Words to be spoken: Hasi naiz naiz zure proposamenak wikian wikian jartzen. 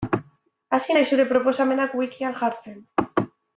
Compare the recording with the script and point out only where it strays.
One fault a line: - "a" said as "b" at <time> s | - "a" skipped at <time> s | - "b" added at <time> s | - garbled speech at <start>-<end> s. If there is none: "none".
- "naiz" skipped at 1.1 s
- "wikian" skipped at 2.4 s